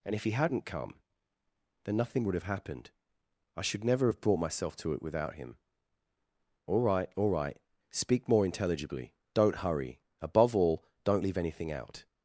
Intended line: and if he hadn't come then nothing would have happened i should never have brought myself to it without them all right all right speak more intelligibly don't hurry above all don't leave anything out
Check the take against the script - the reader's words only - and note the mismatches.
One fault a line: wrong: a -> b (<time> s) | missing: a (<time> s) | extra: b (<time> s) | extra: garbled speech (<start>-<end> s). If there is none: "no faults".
wrong: them -> him (5.4 s)